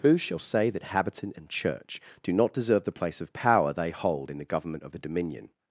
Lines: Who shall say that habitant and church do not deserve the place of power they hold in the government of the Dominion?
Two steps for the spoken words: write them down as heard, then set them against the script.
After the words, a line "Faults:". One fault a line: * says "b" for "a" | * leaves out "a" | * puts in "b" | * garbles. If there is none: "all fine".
Who shall say that habitant and church do not deserve the place of power they hold in the government of the Dominion?
Faults:
all fine